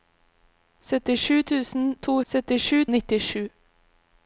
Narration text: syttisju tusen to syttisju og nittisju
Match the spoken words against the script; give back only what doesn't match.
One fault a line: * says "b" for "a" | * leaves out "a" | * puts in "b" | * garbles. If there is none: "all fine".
all fine